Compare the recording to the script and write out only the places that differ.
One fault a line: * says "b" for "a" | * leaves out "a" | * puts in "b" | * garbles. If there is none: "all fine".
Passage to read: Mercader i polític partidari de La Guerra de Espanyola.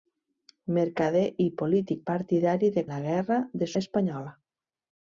all fine